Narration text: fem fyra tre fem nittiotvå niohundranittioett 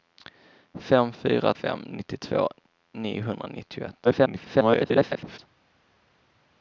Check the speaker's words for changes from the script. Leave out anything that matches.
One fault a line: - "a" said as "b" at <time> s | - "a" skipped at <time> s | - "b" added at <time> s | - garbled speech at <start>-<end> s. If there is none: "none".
- "tre" skipped at 1.5 s
- garbled speech at 4.0-5.4 s